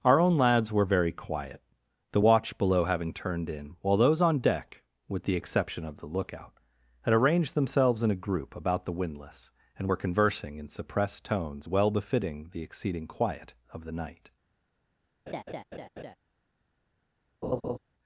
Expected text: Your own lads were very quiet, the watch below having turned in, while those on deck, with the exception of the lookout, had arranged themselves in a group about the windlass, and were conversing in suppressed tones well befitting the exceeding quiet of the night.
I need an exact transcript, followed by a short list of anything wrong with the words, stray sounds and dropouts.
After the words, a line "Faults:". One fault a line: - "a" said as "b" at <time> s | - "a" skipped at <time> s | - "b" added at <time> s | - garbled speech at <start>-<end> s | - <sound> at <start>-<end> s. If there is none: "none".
Our own lads were very quiet, the watch below having turned in, while those on deck, with the exception of the lookout, had arranged themselves in a group about the windlass, and were conversing in suppressed tones well befitting the exceeding quiet of the night.
Faults:
- "Your" said as "Our" at 0.0 s
- laugh at 15.3-16.2 s
- laugh at 17.4-17.8 s